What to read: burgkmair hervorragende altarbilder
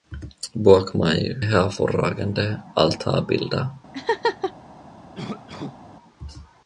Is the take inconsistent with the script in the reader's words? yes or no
no